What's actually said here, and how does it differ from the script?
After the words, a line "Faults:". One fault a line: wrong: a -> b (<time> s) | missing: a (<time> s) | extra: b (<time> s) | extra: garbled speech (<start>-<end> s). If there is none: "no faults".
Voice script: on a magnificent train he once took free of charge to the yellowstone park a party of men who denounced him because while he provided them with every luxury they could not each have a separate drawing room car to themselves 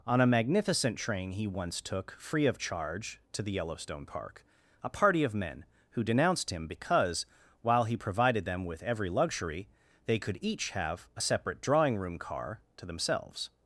on a magnificent train he once took free of charge to the yellowstone park a party of men who denounced him because while he provided them with every luxury they could each have a separate drawing room car to themselves
Faults:
missing: not (10.4 s)